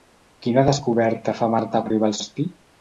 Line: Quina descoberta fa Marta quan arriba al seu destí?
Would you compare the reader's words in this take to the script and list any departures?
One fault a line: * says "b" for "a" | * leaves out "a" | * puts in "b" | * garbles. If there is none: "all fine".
* leaves out "quan"
* leaves out "seu"